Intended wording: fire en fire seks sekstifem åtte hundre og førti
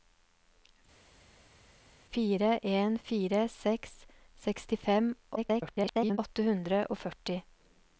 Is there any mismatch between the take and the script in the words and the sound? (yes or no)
yes